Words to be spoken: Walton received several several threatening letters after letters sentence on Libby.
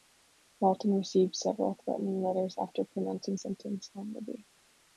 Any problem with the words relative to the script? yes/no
yes